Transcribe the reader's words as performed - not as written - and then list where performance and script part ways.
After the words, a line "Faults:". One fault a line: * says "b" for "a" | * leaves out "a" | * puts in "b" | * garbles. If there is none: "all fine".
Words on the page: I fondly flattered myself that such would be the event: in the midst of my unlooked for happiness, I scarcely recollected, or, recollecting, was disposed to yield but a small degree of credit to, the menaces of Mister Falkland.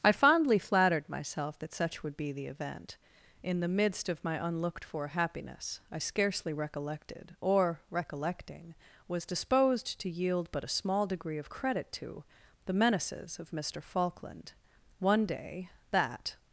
I fondly flattered myself that such would be the event: in the midst of my unlooked for happiness, I scarcely recollected, or, recollecting, was disposed to yield but a small degree of credit to, the menaces of Mister Falkland. One day, that
Faults:
* puts in "One day that"